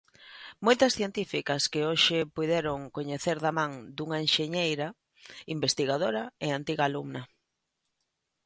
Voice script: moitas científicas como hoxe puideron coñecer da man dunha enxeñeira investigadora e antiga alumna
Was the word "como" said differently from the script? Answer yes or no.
yes